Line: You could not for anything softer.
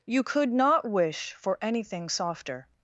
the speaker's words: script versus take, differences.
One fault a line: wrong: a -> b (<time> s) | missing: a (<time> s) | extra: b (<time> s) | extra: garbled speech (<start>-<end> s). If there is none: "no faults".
extra: wish (0.9 s)